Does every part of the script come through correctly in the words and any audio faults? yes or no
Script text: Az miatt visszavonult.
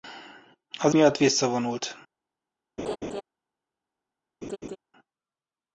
no